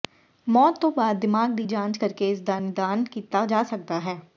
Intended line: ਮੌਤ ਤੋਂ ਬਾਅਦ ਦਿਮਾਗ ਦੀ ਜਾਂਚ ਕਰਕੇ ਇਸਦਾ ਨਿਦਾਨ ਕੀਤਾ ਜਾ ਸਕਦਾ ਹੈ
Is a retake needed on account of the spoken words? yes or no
no